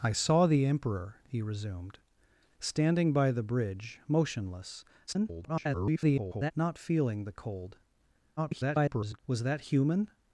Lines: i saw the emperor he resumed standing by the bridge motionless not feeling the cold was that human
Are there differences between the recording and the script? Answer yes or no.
yes